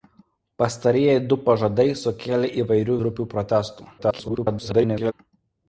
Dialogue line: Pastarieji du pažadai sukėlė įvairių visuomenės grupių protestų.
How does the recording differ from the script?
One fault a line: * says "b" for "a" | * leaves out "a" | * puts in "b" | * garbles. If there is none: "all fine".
* leaves out "visuomenės"
* garbles